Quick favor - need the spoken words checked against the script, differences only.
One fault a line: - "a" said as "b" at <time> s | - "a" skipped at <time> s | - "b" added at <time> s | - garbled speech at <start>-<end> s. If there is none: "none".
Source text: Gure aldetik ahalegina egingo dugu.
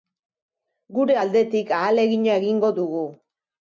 none